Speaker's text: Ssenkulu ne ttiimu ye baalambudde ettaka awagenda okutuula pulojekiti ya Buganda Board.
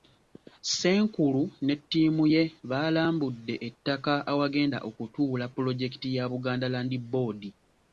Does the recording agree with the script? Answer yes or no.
no